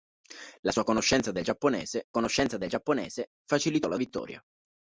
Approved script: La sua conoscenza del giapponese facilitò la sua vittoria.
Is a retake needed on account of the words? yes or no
yes